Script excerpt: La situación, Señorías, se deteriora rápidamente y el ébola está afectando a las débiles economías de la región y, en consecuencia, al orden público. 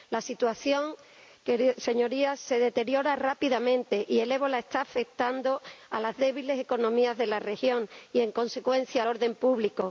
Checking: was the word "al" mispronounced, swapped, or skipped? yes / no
yes